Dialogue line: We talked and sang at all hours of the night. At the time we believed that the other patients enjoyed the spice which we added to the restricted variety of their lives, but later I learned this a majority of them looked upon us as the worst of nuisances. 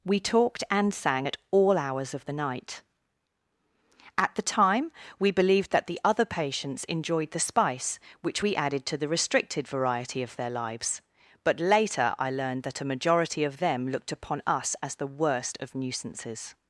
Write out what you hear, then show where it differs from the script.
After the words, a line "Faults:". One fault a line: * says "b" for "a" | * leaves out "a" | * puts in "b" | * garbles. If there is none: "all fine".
We talked and sang at all hours of the night. At the time we believed that the other patients enjoyed the spice which we added to the restricted variety of their lives, but later I learned that a majority of them looked upon us as the worst of nuisances.
Faults:
* says "that" for "this"